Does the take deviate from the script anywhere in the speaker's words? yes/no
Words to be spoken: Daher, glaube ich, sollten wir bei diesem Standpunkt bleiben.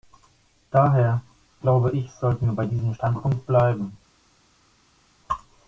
no